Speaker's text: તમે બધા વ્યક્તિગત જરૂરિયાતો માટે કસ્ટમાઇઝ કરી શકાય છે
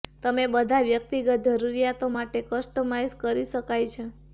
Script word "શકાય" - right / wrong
right